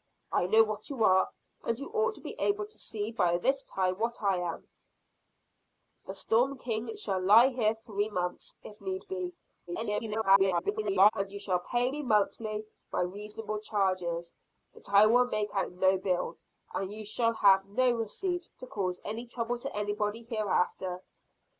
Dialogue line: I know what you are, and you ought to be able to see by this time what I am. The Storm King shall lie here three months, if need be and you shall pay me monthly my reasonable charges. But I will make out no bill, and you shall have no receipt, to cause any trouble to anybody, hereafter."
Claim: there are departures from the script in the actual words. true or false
true